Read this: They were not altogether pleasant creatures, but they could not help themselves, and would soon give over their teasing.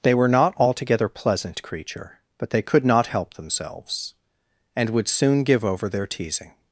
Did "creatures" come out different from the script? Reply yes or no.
yes